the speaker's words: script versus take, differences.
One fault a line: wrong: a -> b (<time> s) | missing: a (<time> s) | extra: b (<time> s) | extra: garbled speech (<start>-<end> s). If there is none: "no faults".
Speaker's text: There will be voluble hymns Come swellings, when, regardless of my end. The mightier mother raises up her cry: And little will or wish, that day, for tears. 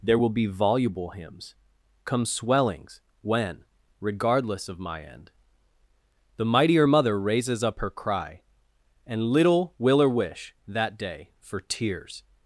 no faults